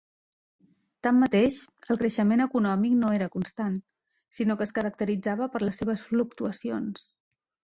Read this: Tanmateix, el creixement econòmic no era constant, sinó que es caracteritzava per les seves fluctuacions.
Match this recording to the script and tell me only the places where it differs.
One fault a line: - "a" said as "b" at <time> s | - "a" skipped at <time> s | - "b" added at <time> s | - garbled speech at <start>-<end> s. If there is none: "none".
none